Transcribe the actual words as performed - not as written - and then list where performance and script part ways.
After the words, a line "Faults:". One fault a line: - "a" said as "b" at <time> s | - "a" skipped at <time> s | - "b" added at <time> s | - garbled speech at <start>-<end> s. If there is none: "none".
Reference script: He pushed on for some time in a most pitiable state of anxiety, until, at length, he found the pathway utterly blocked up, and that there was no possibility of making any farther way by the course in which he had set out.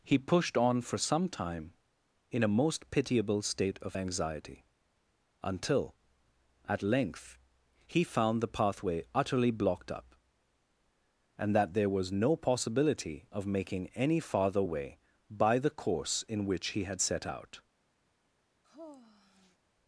He pushed on for some time in a most pitiable state of anxiety, until, at length, he found the pathway utterly blocked up, and that there was no possibility of making any farther way by the course in which he had set out.
Faults:
none